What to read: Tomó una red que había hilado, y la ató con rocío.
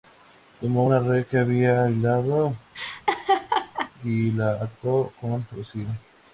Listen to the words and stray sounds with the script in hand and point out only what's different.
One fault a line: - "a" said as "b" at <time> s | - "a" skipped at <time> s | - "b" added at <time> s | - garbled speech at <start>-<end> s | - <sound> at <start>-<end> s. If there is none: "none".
- laugh at 2.7-3.9 s